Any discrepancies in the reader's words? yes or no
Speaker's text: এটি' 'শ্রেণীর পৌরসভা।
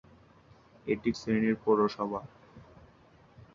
no